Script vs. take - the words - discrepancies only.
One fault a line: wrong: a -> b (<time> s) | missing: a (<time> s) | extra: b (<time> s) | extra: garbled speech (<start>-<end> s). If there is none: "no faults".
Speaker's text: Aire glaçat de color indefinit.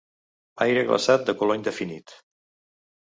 no faults